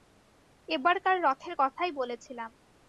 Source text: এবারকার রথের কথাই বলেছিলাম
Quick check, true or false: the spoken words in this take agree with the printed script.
true